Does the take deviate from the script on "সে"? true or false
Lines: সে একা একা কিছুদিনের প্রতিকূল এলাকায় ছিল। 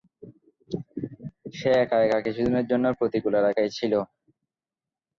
false